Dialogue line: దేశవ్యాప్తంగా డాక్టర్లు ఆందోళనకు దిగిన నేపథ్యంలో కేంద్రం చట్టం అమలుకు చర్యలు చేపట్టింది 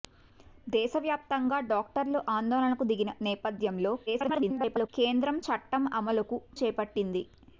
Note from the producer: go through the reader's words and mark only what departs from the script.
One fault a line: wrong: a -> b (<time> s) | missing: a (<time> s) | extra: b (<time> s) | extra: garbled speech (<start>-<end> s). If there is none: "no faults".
extra: garbled speech (4.1-4.9 s)
missing: చర్యలు (6.4 s)